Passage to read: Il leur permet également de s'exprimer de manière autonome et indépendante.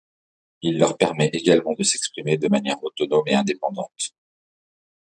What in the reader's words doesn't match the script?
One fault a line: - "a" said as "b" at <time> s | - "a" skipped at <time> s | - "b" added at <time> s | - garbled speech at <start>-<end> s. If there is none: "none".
none